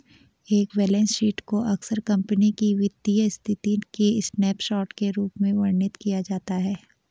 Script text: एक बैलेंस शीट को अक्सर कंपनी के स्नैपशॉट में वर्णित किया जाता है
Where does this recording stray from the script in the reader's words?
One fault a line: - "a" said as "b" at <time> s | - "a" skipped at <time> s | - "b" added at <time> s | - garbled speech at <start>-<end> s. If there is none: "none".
- "की वित्तीय स्थिति" added at 2.5 s
- "के रूप" added at 4.9 s